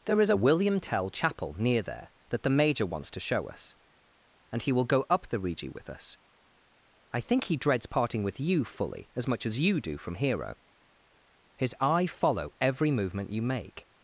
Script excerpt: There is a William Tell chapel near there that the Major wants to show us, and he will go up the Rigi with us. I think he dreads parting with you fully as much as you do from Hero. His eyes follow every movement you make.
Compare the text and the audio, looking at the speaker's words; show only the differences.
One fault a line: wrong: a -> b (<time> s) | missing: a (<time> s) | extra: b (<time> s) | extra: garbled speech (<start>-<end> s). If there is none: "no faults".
wrong: eyes -> eye (11.8 s)